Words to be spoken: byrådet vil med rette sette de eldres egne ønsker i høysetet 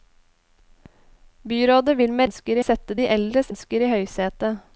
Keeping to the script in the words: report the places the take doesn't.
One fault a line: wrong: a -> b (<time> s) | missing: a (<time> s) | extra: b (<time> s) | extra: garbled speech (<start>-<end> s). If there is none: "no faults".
wrong: rette -> ønsker (2.3 s)
missing: egne (3.5 s)